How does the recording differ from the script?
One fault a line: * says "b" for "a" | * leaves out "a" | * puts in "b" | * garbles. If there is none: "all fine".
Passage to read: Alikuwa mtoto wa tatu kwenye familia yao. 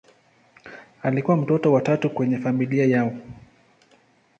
all fine